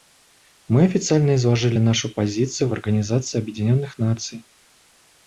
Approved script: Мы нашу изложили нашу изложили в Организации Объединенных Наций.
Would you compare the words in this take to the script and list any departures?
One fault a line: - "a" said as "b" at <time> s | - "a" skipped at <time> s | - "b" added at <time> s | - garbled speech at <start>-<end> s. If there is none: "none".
- "нашу" said as "официально" at 0.8 s
- "изложили" said as "позицию" at 2.1 s